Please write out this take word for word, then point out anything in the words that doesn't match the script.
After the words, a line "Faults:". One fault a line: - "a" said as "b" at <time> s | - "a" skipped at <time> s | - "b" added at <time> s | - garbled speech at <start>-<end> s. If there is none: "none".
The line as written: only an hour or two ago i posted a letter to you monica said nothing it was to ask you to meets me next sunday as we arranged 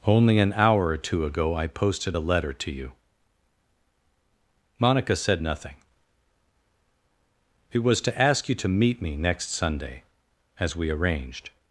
only an hour or two ago i posted a letter to you monica said nothing it was to ask you to meet me next sunday as we arranged
Faults:
- "meets" said as "meet" at 8.7 s